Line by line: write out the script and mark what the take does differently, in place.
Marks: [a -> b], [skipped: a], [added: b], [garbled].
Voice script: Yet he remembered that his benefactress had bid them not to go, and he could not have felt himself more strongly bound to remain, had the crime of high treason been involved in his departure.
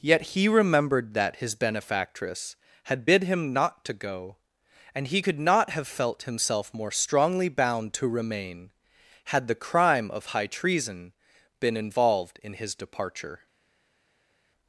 Yet he remembered that his benefactress had bid [them -> him] not to go, and he could not have felt himself more strongly bound to remain, had the crime of high treason been involved in his departure.